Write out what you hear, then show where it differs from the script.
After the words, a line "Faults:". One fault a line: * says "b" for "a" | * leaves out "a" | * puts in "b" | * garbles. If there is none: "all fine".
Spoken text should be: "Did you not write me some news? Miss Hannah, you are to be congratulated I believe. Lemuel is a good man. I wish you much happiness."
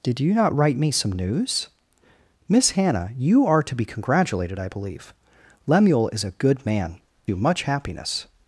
"Did you not write me some news? Miss Hannah, you are to be congratulated I believe. Lemuel is a good man. you much happiness."
Faults:
* leaves out "I wish"